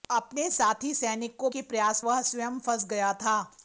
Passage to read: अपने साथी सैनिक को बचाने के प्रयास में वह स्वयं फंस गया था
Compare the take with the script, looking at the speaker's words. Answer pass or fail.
fail